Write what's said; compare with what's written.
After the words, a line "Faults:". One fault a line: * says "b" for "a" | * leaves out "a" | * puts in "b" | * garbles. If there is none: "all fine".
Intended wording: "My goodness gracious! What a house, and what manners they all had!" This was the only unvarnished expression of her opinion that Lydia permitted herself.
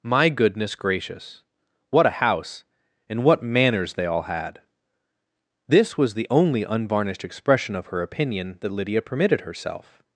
"My goodness gracious! What a house, and what manners they all had!" This was the only unvarnished expression of her opinion that Lydia permitted herself.
Faults:
all fine